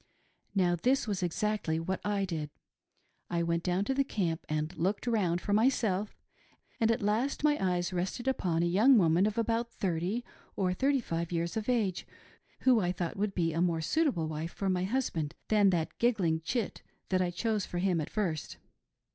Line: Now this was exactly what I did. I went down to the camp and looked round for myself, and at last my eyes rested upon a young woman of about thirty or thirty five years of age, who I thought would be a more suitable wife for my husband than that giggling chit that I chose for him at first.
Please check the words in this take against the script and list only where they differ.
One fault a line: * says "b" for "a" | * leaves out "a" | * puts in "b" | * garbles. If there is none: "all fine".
all fine